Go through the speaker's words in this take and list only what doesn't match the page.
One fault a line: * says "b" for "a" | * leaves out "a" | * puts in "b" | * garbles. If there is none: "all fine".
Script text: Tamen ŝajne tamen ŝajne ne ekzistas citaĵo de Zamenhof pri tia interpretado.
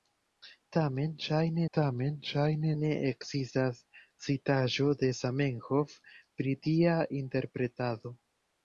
all fine